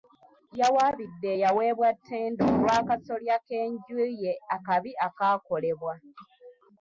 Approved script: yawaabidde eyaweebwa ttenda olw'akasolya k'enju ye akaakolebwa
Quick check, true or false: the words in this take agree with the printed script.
false